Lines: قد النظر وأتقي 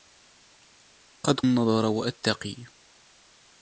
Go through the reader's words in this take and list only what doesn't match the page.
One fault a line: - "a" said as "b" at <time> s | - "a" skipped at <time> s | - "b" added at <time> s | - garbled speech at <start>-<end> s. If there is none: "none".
none